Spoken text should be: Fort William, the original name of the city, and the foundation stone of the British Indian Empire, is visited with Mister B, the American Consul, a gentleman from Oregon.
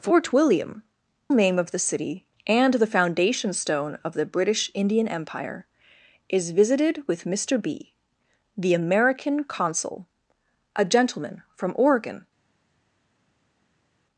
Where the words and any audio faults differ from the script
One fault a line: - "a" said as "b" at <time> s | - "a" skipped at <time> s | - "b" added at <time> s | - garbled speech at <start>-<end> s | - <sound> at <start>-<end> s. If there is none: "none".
- "the original" skipped at 0.8 s